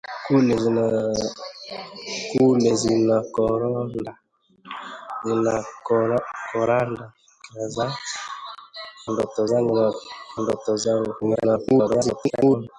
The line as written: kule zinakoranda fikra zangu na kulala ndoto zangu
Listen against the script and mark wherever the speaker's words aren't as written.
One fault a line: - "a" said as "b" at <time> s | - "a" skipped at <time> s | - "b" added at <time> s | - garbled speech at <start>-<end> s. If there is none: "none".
- "fikra" said as "ndoto" at 9.1 s
- "kulala" skipped at 9.9 s
- garbled speech at 11.2-12.7 s